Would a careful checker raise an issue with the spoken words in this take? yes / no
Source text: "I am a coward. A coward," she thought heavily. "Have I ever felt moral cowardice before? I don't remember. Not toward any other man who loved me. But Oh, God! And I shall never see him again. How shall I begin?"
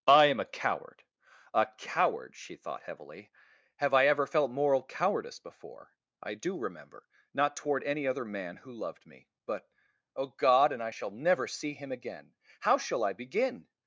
yes